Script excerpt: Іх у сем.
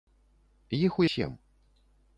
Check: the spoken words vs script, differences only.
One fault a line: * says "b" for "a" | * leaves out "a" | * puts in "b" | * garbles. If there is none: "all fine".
all fine